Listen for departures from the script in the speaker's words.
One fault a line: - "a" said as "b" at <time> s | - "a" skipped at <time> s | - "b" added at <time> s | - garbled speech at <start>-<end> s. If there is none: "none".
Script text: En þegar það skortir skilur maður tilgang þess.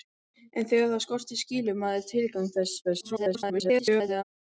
- garbled speech at 2.8-4.2 s